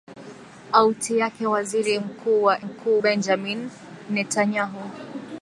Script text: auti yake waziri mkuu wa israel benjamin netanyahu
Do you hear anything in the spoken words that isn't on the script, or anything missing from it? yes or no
yes